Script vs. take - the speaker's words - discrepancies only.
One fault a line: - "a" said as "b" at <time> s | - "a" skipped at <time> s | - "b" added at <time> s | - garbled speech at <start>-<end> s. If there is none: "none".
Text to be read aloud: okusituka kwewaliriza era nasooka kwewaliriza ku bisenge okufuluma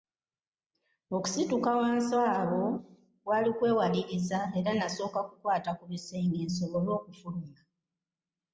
- "wansi awo kwali" added at 1.8 s
- "kwewaliriza" said as "kukwata" at 5.3 s
- "nsobole" added at 6.5 s